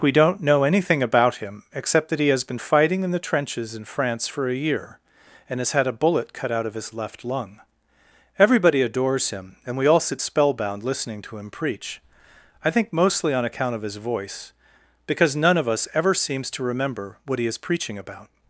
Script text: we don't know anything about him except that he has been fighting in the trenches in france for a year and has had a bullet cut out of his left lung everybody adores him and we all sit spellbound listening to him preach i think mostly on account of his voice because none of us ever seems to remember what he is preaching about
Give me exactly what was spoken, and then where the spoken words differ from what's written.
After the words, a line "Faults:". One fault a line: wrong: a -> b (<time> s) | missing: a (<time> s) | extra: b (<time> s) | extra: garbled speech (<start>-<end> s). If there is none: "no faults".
we don't know anything about him except that he has been fighting in the trenches in france for a year and has had a bullet cut out of his left lung everybody adores him and we all sit spellbound listening to him preach i think mostly on account of his voice because none of us ever seems to remember what he is preaching about
Faults:
no faults